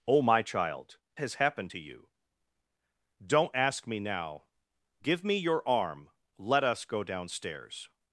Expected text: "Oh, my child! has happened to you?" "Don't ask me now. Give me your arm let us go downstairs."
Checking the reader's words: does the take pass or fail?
pass